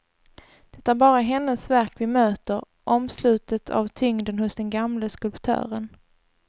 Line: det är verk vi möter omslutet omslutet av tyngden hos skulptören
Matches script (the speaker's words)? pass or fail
fail